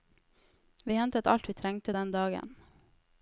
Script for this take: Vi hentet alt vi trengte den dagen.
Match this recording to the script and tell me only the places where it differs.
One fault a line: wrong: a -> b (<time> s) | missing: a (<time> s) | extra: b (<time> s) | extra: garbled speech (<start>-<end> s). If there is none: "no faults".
no faults